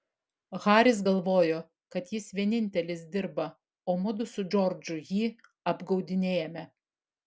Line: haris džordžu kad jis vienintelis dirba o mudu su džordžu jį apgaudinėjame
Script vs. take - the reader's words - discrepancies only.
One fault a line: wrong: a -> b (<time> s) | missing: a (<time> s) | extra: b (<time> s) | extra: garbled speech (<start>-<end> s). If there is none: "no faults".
wrong: džordžu -> galvojo (1.1 s)